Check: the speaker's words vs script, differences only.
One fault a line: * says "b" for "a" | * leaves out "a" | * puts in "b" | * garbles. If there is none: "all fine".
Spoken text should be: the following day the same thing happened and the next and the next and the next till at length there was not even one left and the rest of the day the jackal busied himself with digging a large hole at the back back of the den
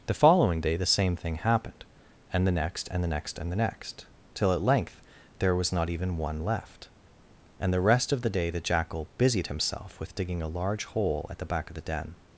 * leaves out "back"